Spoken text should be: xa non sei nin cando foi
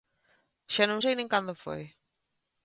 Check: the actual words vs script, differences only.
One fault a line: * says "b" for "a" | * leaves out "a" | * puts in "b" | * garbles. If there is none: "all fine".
all fine